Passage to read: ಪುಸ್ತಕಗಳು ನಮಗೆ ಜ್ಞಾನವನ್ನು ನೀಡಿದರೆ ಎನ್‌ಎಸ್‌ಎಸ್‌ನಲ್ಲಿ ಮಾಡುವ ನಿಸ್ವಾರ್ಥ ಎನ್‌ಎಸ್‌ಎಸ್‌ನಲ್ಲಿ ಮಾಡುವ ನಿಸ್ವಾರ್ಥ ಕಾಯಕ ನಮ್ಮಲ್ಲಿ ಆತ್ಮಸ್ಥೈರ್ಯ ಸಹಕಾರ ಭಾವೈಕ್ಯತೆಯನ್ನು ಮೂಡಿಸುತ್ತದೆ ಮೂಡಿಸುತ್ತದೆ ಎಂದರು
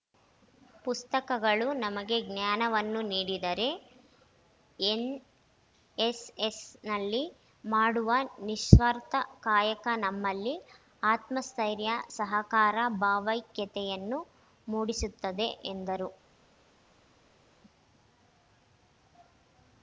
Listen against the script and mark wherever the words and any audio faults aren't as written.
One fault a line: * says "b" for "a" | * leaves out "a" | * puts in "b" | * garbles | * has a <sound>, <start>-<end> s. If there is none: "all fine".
* leaves out "ಎನ್‌ಎಸ್‌ಎಸ್‌ನಲ್ಲಿ ಮಾಡುವ ನಿಸ್ವಾರ್ಥ"
* leaves out "ಮೂಡಿಸುತ್ತದೆ"